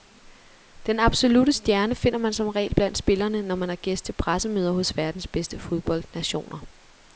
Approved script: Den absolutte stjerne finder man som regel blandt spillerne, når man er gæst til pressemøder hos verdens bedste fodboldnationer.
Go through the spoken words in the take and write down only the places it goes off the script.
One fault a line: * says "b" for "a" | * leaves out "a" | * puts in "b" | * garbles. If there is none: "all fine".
all fine